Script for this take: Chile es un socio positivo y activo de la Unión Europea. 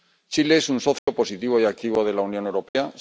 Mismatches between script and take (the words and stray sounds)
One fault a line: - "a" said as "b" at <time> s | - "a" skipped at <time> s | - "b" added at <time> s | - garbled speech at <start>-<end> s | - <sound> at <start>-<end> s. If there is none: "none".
- dropout at 1.0-1.1 s
- dropout at 2.7-2.8 s